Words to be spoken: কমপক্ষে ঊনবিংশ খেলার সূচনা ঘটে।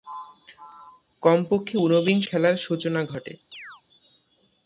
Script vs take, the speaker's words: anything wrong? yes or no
no